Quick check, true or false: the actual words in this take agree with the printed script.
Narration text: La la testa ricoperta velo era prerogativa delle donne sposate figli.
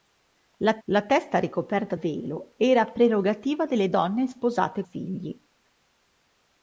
true